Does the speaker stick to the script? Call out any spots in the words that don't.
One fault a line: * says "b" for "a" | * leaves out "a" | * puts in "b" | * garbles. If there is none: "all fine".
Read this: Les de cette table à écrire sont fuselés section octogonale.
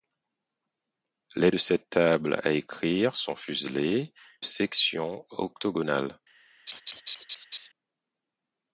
all fine